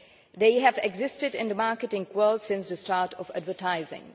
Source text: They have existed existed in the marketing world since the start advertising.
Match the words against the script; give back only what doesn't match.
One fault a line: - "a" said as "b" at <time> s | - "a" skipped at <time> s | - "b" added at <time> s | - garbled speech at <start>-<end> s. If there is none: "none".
- "existed" skipped at 1.4 s
- "of" added at 3.1 s